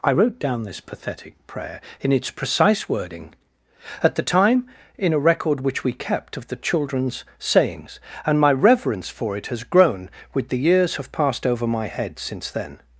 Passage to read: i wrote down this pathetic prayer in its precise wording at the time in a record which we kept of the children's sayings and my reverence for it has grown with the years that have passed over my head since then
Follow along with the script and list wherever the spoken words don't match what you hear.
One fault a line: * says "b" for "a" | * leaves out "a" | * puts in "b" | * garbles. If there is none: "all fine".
* leaves out "that"